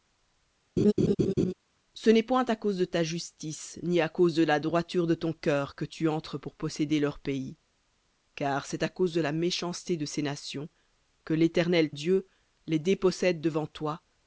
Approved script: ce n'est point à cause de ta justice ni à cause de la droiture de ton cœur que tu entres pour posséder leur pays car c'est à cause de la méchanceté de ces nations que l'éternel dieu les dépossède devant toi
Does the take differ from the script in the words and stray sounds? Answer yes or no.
yes